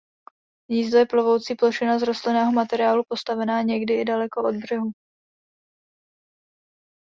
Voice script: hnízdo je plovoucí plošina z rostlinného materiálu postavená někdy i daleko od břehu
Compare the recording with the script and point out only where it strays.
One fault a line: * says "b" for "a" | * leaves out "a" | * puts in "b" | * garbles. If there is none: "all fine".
all fine